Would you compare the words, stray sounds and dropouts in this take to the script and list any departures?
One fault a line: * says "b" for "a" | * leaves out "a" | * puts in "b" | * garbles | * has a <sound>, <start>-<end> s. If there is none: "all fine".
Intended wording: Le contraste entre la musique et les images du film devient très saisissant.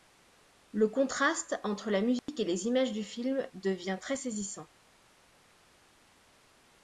* has a dropout, 2.2-2.3 s